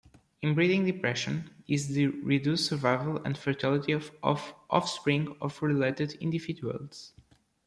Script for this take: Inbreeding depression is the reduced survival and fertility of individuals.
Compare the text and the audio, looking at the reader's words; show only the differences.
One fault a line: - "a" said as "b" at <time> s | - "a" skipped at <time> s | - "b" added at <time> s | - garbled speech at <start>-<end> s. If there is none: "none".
- "offspring of related" added at 4.7 s